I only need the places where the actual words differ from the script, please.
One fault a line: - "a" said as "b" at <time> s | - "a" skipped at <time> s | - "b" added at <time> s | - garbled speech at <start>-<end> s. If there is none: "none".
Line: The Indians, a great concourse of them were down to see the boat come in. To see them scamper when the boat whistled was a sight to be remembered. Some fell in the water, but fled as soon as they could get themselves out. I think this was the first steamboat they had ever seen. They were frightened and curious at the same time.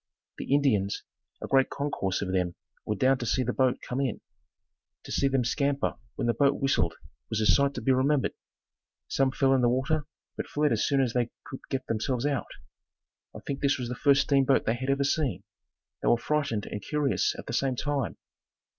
none